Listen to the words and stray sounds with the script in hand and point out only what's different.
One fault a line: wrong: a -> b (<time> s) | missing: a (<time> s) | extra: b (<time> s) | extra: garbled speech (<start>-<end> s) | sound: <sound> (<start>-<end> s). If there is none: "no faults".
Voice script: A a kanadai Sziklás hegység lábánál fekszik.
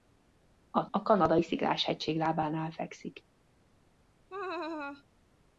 sound: laugh (4.3-5.0 s)